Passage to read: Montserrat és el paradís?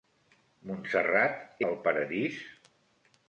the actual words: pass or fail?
fail